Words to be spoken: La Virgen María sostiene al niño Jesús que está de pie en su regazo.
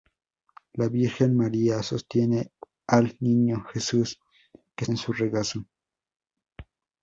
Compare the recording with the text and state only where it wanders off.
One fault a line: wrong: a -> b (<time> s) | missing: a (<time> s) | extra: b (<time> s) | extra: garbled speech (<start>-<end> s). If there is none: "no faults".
missing: está de pie (4.8 s)